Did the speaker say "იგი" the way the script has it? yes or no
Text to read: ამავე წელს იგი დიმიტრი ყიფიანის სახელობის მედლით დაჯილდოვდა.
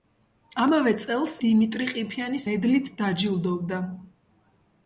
no